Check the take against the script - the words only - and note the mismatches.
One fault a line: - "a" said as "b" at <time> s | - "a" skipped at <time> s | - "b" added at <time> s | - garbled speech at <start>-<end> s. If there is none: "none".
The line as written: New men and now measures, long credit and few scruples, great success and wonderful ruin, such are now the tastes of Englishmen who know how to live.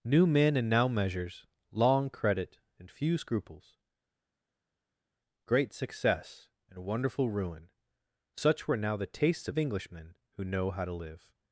- "are" said as "were" at 8.7 s